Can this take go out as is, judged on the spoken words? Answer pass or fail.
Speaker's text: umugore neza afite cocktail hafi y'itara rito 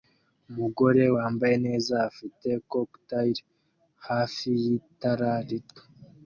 fail